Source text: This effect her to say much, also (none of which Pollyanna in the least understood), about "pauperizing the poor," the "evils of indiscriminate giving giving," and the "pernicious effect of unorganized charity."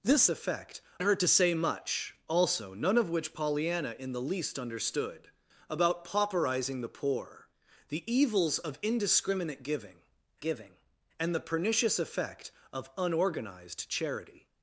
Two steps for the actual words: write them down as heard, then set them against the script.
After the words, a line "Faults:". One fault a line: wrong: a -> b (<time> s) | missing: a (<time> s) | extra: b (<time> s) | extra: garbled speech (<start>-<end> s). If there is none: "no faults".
This effect her to say much, also (none of which Pollyanna in the least understood), about "pauperizing the poor," the "evils of indiscriminate giving giving," and the "pernicious effect of unorganized charity."
Faults:
no faults